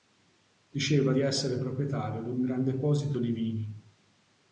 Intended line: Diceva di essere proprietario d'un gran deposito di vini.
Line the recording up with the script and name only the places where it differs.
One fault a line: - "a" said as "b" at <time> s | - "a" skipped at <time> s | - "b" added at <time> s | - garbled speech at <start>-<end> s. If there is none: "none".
none